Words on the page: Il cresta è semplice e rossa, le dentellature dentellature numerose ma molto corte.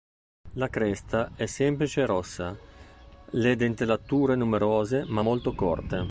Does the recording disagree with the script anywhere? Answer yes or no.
yes